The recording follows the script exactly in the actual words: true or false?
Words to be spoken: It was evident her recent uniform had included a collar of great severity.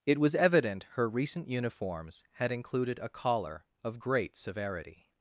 false